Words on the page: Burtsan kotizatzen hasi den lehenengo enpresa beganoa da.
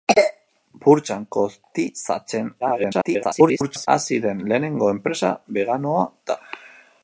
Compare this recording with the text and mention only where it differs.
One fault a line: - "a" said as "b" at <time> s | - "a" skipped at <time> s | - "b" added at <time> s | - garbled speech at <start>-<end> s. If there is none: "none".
- garbled speech at 2.6-3.9 s